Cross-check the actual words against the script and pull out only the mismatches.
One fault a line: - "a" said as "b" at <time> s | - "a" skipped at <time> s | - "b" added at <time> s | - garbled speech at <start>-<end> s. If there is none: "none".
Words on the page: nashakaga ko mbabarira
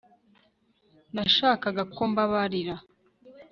none